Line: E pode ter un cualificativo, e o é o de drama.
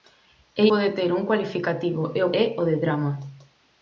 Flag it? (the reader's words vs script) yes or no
no